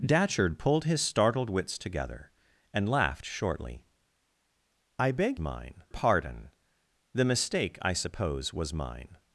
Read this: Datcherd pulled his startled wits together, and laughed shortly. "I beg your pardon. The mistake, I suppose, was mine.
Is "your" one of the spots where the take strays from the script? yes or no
yes